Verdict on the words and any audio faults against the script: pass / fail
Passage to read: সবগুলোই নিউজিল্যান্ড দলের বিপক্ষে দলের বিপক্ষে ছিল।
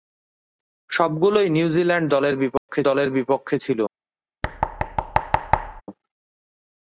fail